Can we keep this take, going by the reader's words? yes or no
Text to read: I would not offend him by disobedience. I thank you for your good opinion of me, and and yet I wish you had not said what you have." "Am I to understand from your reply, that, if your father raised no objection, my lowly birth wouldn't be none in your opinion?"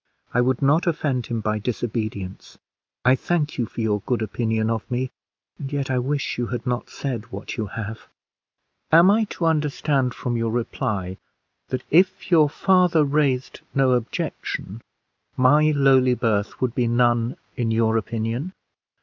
no